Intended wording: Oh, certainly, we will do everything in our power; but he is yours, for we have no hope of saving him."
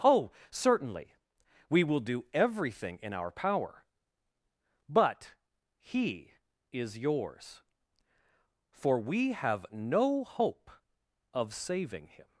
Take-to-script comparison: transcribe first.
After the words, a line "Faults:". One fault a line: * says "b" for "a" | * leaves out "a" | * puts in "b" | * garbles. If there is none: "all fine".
Oh, certainly, we will do everything in our power; but he is yours, for we have no hope of saving him."
Faults:
all fine